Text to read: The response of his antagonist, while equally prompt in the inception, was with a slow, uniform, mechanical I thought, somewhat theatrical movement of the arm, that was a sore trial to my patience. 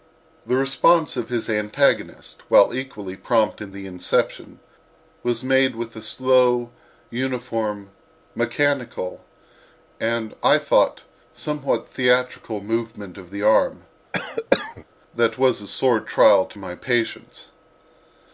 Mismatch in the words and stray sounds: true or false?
true